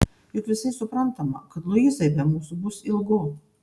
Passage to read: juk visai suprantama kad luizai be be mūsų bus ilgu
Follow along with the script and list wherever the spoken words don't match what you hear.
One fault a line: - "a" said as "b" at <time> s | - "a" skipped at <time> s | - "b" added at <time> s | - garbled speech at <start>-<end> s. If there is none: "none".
- "be" skipped at 2.3 s